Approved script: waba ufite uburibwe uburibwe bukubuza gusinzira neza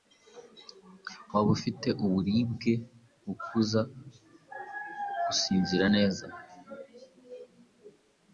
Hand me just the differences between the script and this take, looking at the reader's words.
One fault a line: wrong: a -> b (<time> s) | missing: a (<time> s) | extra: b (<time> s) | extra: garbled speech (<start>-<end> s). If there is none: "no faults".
missing: uburibwe (2.7 s)